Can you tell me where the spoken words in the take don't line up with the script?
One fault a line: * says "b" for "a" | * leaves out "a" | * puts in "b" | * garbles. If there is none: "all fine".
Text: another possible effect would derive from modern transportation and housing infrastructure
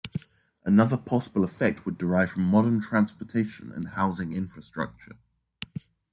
all fine